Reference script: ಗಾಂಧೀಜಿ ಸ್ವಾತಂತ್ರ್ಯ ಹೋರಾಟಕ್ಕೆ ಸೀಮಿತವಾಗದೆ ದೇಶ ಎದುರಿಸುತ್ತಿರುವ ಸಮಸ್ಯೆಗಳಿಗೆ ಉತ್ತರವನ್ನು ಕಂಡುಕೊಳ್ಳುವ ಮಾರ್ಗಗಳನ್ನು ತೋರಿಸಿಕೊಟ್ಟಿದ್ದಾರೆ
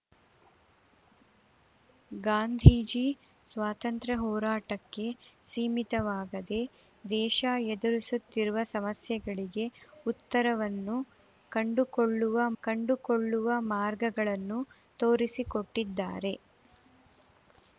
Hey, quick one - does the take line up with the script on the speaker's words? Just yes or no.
no